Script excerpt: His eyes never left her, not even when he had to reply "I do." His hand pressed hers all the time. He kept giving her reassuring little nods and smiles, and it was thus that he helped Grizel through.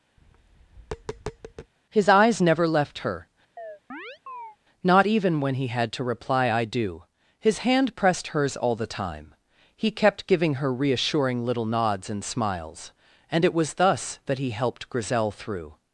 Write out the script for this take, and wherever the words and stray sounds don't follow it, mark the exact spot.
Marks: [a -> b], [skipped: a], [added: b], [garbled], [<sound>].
[tap] His eyes never left her, [chirp] not even when he had to reply "I do." His hand pressed hers all the time. He kept giving her reassuring little nods and smiles, and it was thus that he helped Grizel through.